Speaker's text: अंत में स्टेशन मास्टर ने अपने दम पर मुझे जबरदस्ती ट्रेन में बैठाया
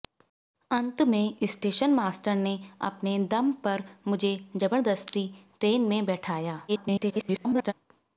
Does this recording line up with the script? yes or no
no